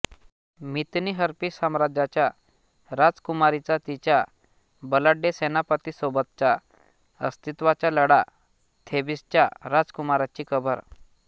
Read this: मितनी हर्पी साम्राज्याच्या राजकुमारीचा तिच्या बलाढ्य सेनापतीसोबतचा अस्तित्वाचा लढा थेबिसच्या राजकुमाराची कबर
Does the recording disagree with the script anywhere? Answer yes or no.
no